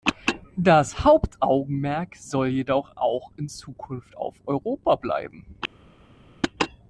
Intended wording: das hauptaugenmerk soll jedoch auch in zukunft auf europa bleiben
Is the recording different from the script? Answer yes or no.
no